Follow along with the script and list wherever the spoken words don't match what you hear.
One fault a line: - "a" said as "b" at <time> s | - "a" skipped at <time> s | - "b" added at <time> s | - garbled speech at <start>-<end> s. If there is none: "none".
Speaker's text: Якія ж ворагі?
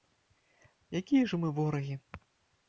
- "мы" added at 1.4 s